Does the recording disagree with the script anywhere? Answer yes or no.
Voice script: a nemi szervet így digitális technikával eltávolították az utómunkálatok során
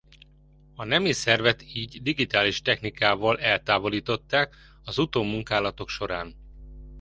no